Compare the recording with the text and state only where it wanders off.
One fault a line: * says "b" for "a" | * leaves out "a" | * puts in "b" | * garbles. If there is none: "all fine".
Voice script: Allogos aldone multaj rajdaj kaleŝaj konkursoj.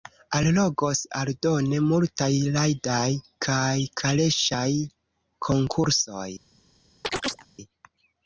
* puts in "kaj"